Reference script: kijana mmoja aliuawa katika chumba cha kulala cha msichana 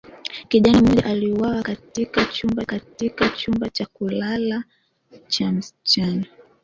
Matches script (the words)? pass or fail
fail